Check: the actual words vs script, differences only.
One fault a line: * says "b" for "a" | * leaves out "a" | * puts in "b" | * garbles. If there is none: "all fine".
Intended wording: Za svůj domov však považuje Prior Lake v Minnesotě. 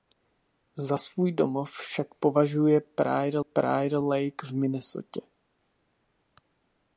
* puts in "Prior"